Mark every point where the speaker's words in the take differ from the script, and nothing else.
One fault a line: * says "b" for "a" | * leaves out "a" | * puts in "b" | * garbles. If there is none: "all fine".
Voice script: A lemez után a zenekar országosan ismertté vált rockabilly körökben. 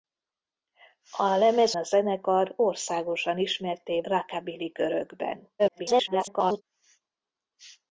* leaves out "után"
* leaves out "vált"
* garbles